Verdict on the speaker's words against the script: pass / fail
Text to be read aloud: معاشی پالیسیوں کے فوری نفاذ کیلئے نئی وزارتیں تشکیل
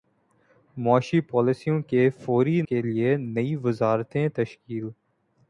fail